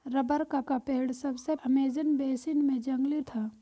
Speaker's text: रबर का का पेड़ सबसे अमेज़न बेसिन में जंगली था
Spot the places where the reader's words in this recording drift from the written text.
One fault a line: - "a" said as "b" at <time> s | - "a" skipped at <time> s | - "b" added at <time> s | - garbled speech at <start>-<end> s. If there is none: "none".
none